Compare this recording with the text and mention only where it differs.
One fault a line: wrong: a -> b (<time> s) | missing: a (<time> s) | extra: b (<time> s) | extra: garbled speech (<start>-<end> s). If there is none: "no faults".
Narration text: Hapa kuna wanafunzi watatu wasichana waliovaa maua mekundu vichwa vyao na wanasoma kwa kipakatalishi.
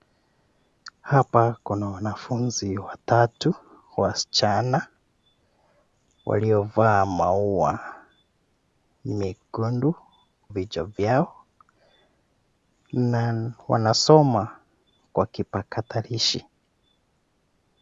no faults